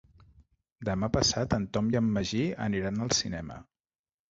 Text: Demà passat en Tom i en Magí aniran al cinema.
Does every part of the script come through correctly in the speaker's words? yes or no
yes